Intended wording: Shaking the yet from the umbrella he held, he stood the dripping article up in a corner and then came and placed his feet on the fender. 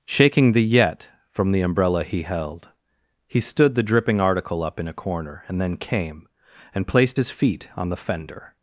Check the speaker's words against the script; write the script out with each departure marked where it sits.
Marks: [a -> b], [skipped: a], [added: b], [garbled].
Shaking the yet from the umbrella he held, he stood the dripping article up in a corner and then came and placed his feet on the fender.